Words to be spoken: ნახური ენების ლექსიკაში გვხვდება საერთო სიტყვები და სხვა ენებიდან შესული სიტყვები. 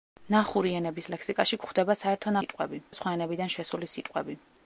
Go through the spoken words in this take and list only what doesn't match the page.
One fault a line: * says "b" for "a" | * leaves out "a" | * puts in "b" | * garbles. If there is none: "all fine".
all fine